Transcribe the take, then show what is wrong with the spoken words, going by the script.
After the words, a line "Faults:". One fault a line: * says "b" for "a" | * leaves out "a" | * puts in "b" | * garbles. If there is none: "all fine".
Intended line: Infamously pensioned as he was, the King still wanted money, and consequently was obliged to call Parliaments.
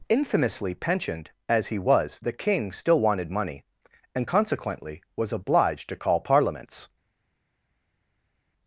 Infamously pensioned as he was, the King still wanted money, and consequently was obliged to call Parliaments.
Faults:
all fine